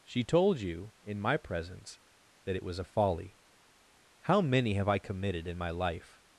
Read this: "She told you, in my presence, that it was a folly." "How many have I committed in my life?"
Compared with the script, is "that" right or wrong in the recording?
right